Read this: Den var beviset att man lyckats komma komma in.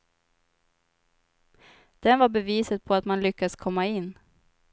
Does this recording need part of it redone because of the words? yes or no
yes